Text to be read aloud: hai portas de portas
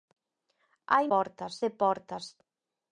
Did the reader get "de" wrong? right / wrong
right